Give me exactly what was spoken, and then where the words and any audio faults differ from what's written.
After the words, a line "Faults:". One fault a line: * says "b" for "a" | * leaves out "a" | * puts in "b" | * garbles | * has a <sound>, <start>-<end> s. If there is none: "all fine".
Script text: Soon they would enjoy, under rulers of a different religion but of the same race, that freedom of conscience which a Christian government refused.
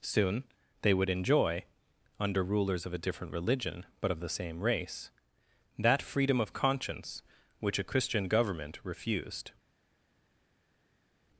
Soon they would enjoy, under rulers of a different religion but of the same race, that freedom of conscience which a Christian government refused.
Faults:
all fine